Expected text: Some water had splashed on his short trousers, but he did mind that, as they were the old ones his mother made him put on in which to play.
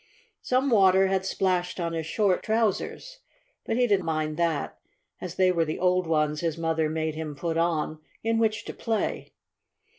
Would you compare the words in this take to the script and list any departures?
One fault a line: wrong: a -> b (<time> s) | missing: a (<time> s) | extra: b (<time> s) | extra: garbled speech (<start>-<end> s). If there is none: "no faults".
no faults